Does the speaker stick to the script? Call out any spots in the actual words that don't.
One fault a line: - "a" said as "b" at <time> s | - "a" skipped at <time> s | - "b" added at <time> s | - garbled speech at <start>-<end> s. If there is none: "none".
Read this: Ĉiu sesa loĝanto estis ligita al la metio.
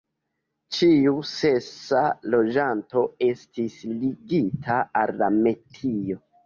none